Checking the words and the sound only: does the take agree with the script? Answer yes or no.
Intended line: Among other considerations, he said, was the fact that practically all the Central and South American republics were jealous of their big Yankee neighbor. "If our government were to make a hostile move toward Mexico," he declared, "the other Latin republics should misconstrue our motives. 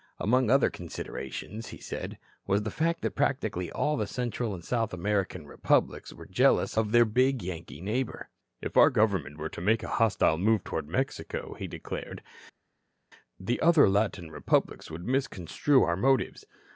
no